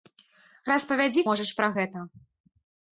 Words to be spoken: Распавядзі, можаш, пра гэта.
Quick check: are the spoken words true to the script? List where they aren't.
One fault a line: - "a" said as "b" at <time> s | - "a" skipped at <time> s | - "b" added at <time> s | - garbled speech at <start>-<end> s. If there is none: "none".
none